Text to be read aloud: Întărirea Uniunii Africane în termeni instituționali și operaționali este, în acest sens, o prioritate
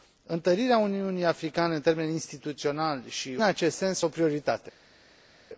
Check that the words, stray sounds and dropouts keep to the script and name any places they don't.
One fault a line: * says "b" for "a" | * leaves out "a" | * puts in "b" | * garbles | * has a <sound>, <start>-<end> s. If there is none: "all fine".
* leaves out "operaționali este în"